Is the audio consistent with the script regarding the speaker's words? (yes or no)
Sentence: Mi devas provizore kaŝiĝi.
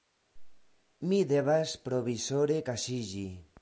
yes